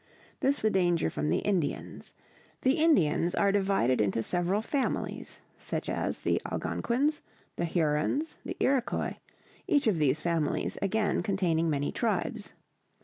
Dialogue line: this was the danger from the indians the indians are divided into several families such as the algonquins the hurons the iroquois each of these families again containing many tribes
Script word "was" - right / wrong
wrong